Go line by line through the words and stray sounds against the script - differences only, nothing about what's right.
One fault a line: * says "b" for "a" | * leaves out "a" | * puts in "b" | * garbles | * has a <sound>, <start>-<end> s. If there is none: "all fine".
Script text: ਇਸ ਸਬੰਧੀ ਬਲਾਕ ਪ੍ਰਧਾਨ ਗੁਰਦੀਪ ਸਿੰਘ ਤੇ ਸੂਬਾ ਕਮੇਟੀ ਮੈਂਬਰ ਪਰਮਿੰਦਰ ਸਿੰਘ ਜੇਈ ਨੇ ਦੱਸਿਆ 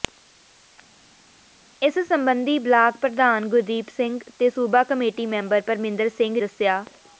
* leaves out "ਜੇਈ ਨੇ"